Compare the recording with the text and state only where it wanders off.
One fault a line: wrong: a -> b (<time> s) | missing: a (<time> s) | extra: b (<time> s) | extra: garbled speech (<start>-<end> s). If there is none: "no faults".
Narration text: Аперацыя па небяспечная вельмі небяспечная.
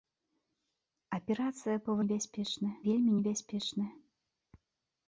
no faults